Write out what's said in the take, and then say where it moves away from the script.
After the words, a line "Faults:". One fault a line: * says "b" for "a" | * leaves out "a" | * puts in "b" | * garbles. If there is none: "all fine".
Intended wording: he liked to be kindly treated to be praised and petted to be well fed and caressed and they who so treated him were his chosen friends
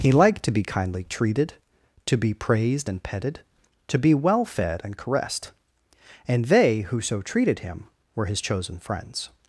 he liked to be kindly treated to be praised and petted to be well fed and caressed and they who so treated him were his chosen friends
Faults:
all fine